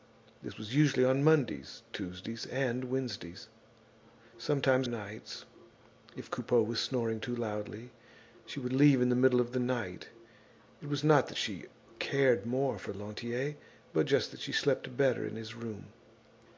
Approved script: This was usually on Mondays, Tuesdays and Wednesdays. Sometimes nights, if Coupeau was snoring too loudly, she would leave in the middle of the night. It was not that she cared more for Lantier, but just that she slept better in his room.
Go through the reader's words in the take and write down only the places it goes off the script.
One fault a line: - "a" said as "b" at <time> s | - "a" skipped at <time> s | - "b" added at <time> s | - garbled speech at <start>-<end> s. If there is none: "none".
none